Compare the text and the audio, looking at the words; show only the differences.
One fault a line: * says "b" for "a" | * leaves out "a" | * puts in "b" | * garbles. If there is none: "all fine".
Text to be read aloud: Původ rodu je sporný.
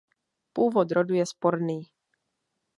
all fine